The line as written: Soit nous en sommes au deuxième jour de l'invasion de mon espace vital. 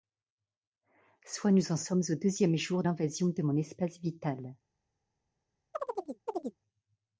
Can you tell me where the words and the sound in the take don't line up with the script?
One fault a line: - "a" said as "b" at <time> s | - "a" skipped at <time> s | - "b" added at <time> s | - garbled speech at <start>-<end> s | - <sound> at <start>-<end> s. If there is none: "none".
- "de" skipped at 2.8 s
- chirp at 5.7-6.6 s